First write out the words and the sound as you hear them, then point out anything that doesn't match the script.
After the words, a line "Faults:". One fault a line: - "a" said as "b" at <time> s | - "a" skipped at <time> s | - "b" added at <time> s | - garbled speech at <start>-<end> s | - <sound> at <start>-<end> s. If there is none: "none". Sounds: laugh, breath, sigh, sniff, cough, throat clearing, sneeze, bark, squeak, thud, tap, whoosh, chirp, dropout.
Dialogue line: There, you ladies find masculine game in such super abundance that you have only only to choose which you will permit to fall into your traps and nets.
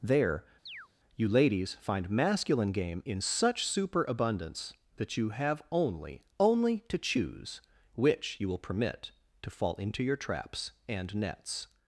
There, you ladies find masculine game in such super abundance that you have only only to choose which you will permit to fall into your traps and nets.
Faults:
- chirp at 0.7-0.9 s